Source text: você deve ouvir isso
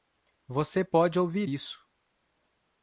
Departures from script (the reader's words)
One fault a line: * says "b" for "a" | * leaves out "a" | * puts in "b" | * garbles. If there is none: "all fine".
* says "pode" for "deve"